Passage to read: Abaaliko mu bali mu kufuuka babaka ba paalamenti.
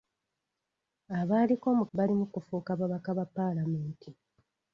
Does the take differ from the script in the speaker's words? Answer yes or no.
no